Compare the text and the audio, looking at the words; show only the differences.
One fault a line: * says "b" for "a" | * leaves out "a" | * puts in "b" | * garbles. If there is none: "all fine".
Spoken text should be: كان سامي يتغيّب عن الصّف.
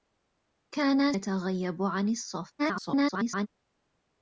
* leaves out "سامي"
* garbles